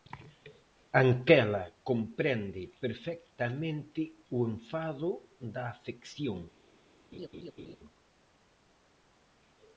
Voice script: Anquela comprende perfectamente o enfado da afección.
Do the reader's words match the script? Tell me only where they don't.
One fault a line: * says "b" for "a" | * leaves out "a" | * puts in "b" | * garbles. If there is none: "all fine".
all fine